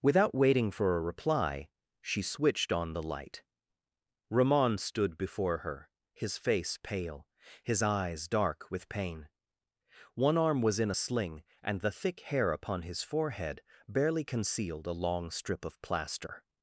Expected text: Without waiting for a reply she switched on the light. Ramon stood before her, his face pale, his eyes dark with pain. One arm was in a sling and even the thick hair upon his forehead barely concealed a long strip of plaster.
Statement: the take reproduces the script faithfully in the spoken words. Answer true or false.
false